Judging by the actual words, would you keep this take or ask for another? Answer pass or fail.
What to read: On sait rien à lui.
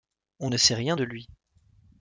fail